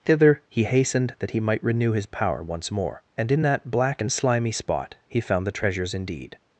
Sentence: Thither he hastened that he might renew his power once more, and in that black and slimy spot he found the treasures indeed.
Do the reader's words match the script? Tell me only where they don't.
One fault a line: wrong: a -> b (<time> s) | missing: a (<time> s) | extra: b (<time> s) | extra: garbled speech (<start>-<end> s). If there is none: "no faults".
no faults